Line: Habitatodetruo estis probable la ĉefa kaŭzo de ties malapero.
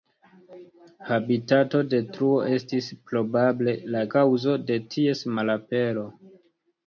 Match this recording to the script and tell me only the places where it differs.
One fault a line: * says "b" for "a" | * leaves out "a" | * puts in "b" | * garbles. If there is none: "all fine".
* leaves out "ĉefa"